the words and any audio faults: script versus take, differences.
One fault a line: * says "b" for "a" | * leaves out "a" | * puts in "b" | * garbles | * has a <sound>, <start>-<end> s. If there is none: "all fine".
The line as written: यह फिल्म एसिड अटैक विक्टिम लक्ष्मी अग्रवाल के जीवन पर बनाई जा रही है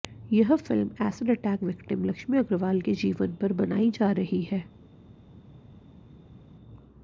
all fine